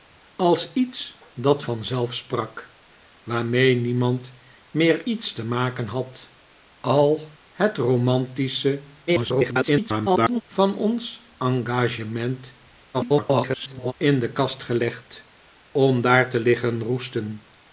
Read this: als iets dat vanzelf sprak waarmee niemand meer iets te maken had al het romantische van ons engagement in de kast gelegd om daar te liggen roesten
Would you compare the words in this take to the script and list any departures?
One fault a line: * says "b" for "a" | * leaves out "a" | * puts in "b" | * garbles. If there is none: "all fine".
* garbles
* garbles